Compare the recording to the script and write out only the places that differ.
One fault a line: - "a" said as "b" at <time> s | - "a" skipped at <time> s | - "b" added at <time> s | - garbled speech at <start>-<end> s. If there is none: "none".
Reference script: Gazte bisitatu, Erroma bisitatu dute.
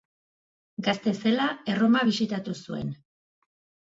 - "bisitatu" said as "zela" at 1.2 s
- "dute" said as "zuen" at 2.7 s